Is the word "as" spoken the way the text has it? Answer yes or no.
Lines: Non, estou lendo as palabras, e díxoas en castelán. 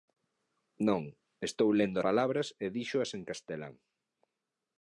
no